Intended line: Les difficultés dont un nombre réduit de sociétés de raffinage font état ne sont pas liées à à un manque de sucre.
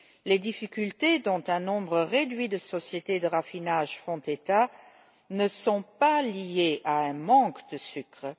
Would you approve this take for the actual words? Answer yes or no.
no